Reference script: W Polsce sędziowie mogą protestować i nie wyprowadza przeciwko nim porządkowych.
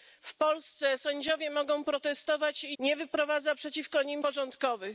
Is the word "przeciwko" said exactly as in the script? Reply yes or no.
yes